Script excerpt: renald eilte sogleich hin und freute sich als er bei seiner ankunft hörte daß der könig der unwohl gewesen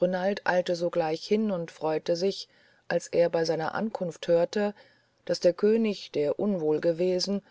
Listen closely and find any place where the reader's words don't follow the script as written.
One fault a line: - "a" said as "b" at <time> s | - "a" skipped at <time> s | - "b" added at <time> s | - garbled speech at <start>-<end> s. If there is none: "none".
none